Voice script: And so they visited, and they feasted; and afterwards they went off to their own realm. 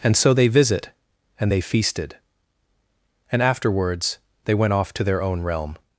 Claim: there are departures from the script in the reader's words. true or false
true